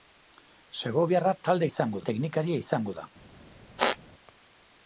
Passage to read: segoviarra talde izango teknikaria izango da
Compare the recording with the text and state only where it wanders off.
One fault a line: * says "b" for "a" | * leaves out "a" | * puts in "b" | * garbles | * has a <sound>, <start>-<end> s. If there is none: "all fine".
* has a squeak, 3.8-4.0 s